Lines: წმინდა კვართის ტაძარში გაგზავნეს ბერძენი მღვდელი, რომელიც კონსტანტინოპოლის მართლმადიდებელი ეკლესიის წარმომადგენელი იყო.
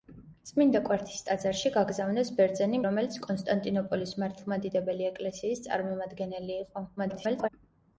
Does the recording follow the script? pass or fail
fail